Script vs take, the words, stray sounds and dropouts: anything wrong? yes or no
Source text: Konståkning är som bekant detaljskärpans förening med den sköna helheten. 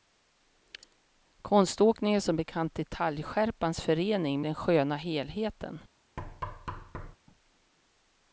yes